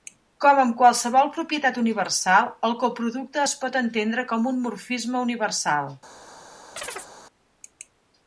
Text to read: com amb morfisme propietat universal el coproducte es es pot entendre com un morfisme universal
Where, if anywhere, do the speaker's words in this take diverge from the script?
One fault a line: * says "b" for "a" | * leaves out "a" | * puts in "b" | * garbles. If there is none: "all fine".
* says "qualsevol" for "morfisme"
* leaves out "es"